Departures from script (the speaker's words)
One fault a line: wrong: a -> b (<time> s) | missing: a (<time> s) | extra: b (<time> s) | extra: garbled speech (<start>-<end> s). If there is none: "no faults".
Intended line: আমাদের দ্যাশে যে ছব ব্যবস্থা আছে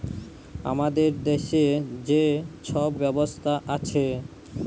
no faults